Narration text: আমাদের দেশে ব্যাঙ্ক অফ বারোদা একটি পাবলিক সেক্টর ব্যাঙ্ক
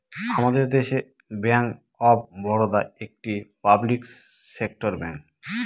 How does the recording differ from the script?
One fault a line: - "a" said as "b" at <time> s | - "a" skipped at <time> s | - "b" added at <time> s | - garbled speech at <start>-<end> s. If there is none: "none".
none